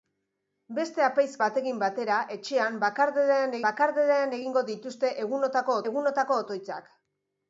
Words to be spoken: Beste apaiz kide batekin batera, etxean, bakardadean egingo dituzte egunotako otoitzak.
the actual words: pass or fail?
fail